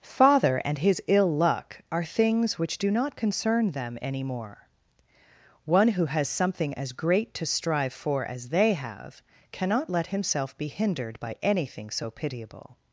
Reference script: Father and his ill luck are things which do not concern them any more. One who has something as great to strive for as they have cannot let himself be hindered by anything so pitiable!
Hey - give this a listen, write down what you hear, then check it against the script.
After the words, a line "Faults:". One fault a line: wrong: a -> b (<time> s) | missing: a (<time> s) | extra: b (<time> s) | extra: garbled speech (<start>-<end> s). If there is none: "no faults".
Father and his ill luck are things which do not concern them any more. One who has something as great to strive for as they have cannot let himself be hindered by anything so pitiable!
Faults:
no faults